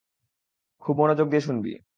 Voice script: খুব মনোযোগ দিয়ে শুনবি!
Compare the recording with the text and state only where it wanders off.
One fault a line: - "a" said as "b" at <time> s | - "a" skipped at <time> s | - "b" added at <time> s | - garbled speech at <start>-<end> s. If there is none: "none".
none